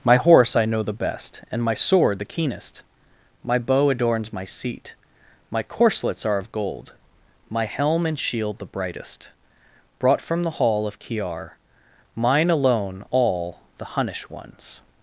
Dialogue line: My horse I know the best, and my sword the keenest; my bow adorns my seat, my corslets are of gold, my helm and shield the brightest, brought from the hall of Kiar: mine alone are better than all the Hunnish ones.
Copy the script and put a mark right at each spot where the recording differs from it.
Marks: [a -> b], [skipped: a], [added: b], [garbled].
My horse I know the best, and my sword the keenest; my bow adorns my seat, my corslets are of gold, my helm and shield the brightest, brought from the hall of Kiar: mine alone [skipped: are better than] all the Hunnish ones.